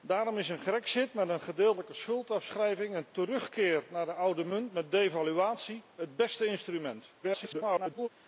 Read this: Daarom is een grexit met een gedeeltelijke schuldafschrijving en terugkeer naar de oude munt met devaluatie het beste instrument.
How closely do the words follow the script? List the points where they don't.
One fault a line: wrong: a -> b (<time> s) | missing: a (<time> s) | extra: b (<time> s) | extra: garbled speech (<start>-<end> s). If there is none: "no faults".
extra: garbled speech (7.2-8.1 s)